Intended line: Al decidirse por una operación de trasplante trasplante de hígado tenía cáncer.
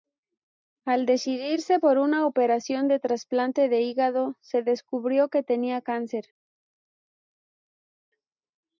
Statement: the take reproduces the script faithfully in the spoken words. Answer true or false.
false